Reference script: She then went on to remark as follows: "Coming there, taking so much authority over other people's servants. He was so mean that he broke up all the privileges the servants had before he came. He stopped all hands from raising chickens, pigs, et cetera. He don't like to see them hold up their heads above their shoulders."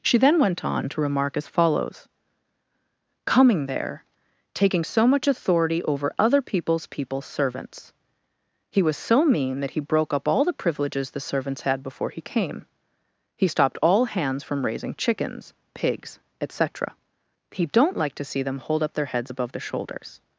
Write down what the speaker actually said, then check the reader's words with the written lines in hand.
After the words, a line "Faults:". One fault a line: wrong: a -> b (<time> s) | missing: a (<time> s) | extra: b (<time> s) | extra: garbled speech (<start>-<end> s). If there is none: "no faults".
She then went on to remark as follows: "Coming there, taking so much authority over other people's people's servants. He was so mean that he broke up all the privileges the servants had before he came. He stopped all hands from raising chickens, pigs, et cetera. He don't like to see them hold up their heads above their shoulders."
Faults:
extra: people's (6.9 s)